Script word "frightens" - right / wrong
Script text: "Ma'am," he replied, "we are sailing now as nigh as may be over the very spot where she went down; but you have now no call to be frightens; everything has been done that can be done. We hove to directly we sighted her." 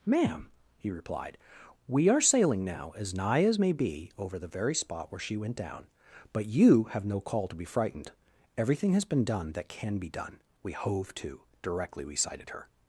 wrong